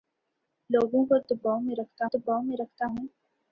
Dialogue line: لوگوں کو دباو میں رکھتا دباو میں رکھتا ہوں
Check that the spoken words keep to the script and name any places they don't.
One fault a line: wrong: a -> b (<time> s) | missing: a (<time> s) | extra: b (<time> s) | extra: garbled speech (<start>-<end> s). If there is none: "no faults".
no faults